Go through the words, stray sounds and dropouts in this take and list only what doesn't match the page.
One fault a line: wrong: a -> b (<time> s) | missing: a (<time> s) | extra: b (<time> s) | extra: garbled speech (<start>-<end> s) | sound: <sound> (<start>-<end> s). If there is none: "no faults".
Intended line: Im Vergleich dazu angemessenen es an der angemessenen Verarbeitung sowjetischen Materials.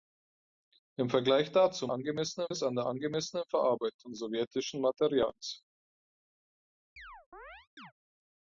sound: chirp (7.0-7.9 s)